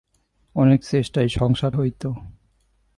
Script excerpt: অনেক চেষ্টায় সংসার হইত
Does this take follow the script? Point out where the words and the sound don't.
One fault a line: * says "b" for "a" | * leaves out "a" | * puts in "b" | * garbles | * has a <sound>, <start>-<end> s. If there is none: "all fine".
all fine